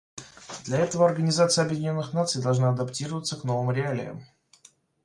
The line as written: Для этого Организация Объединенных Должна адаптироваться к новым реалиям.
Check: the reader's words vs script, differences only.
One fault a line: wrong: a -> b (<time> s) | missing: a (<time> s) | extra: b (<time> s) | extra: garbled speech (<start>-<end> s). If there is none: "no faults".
extra: Наций (2.1 s)